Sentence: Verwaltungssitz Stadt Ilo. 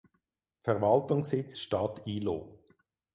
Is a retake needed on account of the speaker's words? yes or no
no